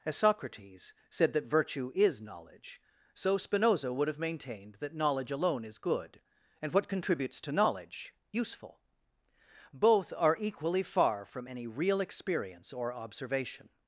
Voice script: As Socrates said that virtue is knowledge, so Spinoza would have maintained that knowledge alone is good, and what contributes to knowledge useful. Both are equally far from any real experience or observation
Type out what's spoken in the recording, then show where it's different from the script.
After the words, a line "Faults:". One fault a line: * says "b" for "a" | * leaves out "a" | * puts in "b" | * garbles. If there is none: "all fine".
As Socrates said that virtue is knowledge, so Spinoza would have maintained that knowledge alone is good, and what contributes to knowledge useful. Both are equally far from any real experience or observation
Faults:
all fine